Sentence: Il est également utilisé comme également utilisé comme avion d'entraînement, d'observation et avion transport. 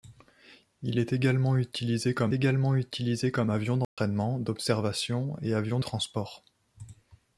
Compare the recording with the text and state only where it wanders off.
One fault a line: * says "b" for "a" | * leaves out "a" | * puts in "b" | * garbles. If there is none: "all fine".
all fine